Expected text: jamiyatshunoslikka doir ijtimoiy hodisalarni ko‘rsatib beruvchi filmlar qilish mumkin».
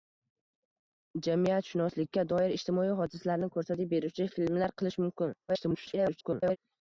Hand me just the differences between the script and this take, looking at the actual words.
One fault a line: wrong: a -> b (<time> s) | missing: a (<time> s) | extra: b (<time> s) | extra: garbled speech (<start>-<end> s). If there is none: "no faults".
extra: garbled speech (5.5-6.6 s)